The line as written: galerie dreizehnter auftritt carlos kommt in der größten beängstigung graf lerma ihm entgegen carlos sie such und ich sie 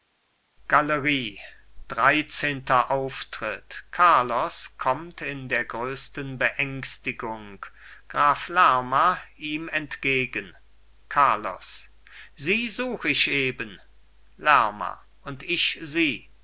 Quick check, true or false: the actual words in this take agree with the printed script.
false